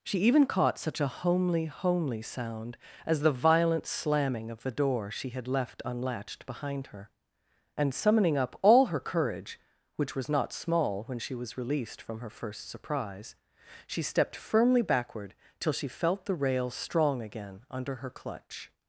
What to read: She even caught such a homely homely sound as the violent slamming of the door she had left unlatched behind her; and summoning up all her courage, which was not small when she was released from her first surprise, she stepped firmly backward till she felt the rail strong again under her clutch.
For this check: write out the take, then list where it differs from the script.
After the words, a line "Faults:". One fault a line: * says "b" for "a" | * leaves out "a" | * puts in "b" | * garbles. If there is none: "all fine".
She even caught such a homely homely sound as the violent slamming of the door she had left unlatched behind her; and summoning up all her courage, which was not small when she was released from her first surprise, she stepped firmly backward till she felt the rail strong again under her clutch.
Faults:
all fine